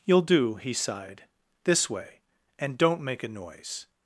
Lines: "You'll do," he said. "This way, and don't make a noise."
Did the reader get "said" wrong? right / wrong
wrong